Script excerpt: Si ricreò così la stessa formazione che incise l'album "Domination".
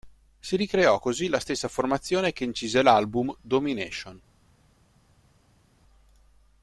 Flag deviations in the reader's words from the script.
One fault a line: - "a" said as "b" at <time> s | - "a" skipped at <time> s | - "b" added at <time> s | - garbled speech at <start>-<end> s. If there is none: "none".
none